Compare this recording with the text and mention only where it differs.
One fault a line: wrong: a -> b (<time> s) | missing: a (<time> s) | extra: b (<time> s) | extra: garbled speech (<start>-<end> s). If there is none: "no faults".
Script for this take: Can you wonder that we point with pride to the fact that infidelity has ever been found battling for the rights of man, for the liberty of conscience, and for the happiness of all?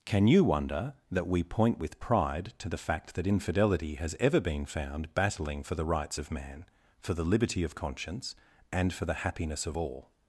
no faults